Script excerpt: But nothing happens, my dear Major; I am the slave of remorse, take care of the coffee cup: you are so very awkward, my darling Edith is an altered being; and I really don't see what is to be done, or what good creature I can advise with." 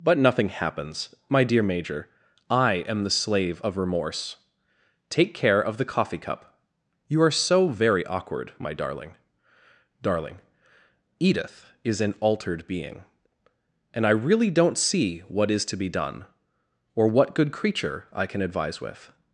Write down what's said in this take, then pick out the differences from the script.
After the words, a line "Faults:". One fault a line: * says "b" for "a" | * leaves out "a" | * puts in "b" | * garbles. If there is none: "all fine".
But nothing happens, my dear Major; I am the slave of remorse, take care of the coffee cup: you are so very awkward, my darling darling Edith is an altered being; and I really don't see what is to be done, or what good creature I can advise with."
Faults:
* puts in "darling"